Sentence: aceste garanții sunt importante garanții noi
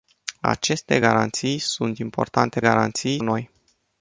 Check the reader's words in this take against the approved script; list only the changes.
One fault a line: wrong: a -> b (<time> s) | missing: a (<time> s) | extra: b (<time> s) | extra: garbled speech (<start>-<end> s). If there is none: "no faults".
no faults